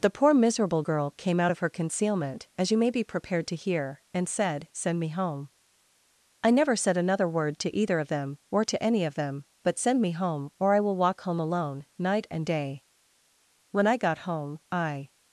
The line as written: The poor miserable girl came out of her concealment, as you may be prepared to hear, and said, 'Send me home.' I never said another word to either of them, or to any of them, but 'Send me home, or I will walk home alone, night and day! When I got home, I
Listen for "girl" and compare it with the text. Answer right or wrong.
right